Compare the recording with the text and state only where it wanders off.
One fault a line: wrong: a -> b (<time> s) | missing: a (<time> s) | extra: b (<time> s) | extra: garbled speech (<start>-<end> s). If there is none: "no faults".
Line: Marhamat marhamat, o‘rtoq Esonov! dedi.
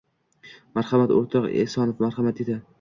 missing: marhamat (1.1 s)
extra: marhamat (2.1 s)